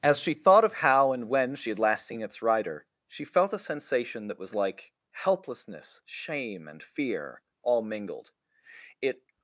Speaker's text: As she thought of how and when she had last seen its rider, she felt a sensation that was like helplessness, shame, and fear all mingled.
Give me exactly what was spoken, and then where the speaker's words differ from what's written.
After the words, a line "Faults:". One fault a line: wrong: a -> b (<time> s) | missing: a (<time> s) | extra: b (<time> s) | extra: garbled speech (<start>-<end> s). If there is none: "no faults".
As she thought of how and when she had last seen its rider, she felt a sensation that was like helplessness, shame, and fear all mingled. It
Faults:
extra: It (9.0 s)